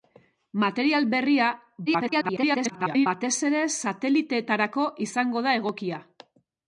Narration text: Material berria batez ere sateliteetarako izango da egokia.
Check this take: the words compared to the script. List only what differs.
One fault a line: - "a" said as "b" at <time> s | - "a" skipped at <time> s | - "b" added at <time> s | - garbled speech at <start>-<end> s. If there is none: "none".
- garbled speech at 1.9-3.1 s